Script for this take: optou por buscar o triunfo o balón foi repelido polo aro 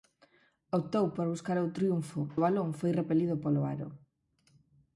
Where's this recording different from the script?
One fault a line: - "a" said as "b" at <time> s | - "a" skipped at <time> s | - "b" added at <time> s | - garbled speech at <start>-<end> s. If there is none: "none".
none